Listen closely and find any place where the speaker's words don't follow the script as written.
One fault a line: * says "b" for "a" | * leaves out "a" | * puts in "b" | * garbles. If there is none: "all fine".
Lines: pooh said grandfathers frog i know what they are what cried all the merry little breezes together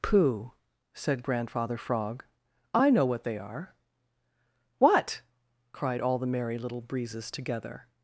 * says "grandfather" for "grandfathers"